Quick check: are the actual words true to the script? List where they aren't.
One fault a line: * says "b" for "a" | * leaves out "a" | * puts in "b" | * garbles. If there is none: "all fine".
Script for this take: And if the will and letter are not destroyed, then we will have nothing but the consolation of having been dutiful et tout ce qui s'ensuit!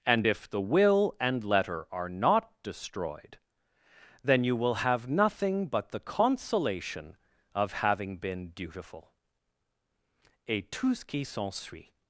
* says "you" for "we"